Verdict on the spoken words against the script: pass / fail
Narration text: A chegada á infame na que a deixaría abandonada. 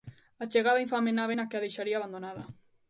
fail